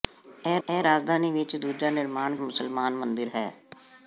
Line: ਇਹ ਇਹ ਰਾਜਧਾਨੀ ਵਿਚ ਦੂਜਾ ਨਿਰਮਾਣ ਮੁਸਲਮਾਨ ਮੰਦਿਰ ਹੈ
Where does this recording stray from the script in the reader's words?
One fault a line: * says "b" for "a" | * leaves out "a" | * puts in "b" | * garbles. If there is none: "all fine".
all fine